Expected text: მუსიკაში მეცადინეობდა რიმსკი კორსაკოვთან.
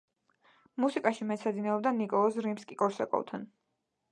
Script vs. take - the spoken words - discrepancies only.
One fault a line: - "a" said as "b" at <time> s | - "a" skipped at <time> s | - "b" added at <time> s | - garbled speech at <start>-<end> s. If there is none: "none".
- "ნიკოლოზ" added at 2.0 s